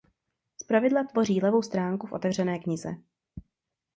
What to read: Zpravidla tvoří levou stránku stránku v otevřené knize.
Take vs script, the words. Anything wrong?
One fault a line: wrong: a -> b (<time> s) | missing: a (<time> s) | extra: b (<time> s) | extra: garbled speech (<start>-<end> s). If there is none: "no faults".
missing: stránku (2.1 s)